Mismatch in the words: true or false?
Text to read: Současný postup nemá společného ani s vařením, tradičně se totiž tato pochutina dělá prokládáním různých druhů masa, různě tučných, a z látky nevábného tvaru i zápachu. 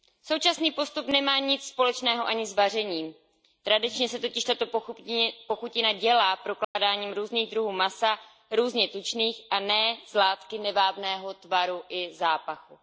true